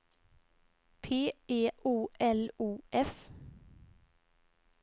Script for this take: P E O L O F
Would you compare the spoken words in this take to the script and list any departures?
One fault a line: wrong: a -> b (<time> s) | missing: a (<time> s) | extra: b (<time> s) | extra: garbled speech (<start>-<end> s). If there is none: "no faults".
no faults